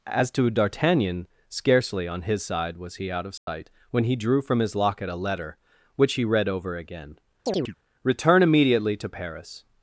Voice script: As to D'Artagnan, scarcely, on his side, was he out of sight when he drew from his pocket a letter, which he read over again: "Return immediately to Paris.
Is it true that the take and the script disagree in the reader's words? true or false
true